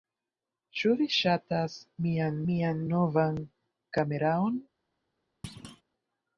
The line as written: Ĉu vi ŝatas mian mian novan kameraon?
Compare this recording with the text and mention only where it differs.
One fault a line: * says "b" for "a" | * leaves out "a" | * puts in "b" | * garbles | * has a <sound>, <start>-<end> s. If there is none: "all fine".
* has a thud, 5.4-5.8 s